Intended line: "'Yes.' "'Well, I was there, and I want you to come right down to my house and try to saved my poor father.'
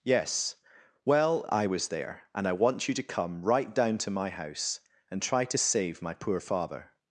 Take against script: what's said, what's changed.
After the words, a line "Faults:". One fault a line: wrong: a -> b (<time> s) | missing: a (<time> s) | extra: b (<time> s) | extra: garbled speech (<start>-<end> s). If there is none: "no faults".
"'Yes.' "'Well, I was there, and I want you to come right down to my house and try to save my poor father.'
Faults:
wrong: saved -> save (5.6 s)